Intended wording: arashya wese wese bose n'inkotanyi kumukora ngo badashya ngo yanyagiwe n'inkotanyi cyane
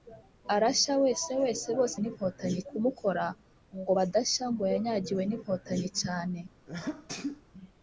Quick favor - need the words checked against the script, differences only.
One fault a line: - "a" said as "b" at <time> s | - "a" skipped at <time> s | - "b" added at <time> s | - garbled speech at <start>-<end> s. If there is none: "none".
none